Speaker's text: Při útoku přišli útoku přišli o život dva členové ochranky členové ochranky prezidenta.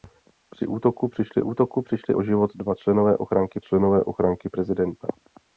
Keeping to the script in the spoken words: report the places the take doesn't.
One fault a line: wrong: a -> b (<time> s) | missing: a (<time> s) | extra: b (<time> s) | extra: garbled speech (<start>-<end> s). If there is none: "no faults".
no faults